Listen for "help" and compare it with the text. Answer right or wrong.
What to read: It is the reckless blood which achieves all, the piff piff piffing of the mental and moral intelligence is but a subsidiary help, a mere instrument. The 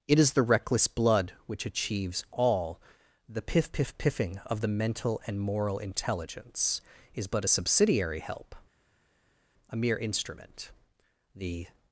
right